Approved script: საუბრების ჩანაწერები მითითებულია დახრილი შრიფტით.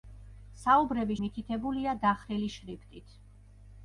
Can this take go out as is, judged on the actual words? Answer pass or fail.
fail